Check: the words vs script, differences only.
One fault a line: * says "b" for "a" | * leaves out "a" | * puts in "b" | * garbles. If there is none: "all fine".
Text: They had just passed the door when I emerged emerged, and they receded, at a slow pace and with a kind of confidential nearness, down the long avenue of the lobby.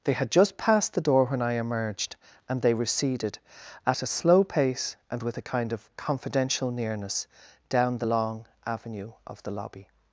* leaves out "emerged"